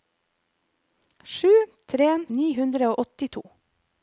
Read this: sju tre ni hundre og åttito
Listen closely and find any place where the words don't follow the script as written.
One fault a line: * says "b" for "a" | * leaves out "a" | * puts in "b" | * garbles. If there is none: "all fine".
all fine